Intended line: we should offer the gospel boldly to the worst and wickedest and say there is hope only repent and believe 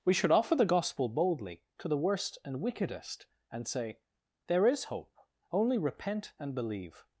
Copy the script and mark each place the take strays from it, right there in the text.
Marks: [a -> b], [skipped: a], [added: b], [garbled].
we should offer the gospel boldly to the worst and wickedest and say there is hope only repent and believe